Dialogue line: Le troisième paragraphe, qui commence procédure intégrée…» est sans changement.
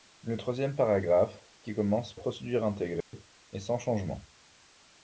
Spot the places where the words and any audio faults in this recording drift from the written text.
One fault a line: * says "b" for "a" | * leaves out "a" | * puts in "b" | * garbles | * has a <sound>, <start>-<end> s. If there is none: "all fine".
* has a dropout, 3.0-3.1 s